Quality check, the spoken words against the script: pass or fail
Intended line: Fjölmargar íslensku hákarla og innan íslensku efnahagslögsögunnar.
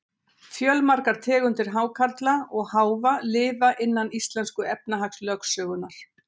fail